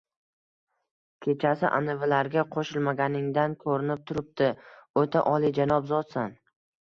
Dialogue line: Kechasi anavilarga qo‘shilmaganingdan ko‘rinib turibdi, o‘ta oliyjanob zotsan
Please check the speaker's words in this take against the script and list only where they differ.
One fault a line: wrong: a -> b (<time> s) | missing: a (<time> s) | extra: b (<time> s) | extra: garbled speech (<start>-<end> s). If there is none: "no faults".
no faults